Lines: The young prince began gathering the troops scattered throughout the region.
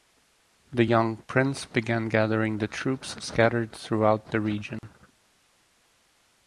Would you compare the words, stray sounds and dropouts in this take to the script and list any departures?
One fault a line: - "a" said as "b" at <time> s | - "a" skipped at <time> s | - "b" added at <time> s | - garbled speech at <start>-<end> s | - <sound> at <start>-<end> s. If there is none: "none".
- dropout at 4.8-4.8 s